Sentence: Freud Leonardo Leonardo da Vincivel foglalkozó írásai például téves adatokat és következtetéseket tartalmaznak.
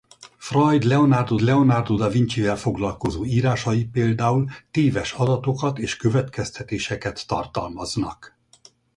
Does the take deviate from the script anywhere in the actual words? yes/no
no